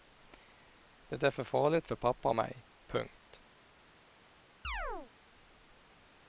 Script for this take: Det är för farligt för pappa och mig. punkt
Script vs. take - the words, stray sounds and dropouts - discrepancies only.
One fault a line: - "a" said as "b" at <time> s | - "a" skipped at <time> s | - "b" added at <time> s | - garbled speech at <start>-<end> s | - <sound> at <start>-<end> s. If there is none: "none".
- chirp at 4.6-5.1 s